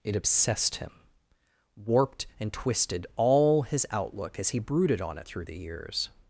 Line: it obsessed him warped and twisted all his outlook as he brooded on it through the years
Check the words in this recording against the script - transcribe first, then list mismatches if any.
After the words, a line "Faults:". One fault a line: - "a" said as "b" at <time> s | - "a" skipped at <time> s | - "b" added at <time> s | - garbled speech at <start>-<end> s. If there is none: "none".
it obsessed him warped and twisted all his outlook as he brooded on it through the years
Faults:
none